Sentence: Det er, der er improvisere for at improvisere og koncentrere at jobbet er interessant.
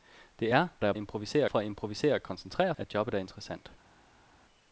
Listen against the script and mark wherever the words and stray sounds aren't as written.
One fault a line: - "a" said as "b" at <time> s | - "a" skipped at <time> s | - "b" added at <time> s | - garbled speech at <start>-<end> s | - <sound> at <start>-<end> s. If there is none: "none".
none